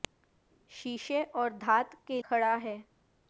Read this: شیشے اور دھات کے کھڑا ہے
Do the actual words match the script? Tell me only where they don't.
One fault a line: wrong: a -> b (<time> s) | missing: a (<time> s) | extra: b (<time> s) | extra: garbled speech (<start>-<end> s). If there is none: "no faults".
no faults